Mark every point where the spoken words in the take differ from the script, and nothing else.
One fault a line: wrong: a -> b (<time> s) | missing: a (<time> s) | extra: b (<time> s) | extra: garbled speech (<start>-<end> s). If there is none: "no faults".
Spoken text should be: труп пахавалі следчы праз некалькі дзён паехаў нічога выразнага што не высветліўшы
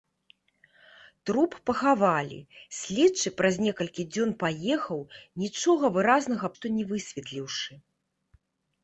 no faults